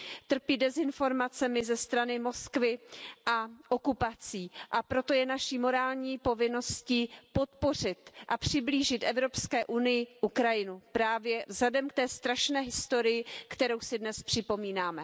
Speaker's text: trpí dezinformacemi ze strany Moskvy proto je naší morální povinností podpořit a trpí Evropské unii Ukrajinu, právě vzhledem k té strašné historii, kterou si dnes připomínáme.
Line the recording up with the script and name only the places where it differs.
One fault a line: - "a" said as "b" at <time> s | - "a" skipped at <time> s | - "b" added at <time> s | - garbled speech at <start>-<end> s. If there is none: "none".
- "a okupací a" added at 3.2 s
- "trpí" said as "přiblížit" at 8.4 s